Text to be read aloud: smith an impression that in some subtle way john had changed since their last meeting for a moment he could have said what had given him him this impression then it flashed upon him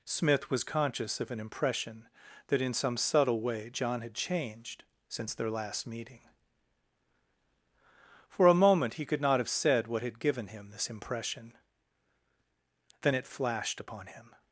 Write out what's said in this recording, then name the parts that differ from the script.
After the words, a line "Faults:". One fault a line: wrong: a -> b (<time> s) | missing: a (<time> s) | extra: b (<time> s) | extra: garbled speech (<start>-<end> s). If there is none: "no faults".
smith was conscious of an impression that in some subtle way john had changed since their last meeting for a moment he could not have said what had given him this impression then it flashed upon him
Faults:
extra: was conscious of (0.5 s)
extra: not (9.2 s)
missing: him (10.7 s)